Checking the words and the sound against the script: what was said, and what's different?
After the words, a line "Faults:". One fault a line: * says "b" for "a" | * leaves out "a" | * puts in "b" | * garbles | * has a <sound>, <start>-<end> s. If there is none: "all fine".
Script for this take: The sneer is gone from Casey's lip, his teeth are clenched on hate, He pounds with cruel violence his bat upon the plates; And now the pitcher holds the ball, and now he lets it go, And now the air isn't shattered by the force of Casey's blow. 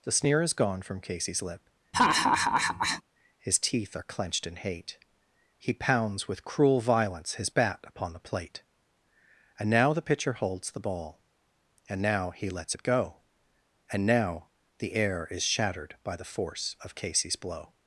The sneer is gone from Casey's lip, his teeth are clenched in hate, He pounds with cruel violence his bat upon the plate; And now the pitcher holds the ball, and now he lets it go, And now the air is shattered by the force of Casey's blow.
Faults:
* has a laugh, 1.9-3.0 s
* says "in" for "on"
* says "plate" for "plates"
* says "is" for "isn't"